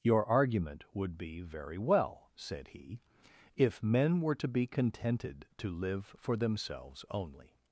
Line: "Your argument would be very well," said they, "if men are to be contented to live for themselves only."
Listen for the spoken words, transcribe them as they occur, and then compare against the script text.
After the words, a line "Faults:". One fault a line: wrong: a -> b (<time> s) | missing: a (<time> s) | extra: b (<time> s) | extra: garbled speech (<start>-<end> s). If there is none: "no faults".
"Your argument would be very well," said he, "if men were to be contented to live for themselves only."
Faults:
wrong: they -> he (2.7 s)
wrong: are -> were (4.2 s)